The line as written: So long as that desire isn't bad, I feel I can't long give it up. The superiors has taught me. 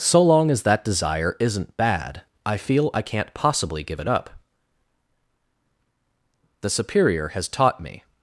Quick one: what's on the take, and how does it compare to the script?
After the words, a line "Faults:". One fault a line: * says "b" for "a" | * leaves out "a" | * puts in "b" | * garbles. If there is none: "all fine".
So long as that desire isn't bad, I feel I can't possibly give it up. The superior has taught me.
Faults:
* says "possibly" for "long"
* says "superior" for "superiors"